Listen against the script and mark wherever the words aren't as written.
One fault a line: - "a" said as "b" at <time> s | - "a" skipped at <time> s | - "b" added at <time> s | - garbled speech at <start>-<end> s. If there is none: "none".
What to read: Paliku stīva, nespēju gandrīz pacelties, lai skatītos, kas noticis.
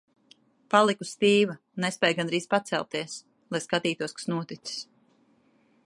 none